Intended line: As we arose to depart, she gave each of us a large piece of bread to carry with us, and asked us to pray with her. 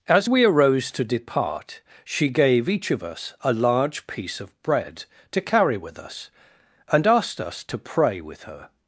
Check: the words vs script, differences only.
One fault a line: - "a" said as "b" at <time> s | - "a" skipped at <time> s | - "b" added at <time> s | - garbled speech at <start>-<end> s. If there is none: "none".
none